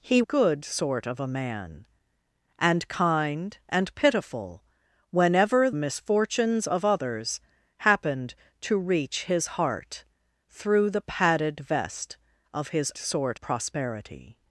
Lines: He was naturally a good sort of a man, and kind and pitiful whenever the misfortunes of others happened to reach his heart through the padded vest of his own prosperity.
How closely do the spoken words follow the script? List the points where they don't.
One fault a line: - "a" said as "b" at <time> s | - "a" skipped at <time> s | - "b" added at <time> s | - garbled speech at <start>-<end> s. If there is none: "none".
- "was naturally a" skipped at 0.2 s
- "the" skipped at 5.7 s
- "own" said as "sort" at 13.0 s